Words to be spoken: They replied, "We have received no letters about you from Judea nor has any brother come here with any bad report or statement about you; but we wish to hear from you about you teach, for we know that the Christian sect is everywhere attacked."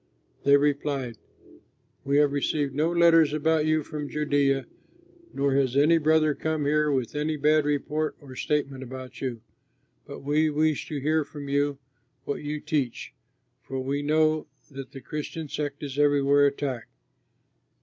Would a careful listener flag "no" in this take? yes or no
no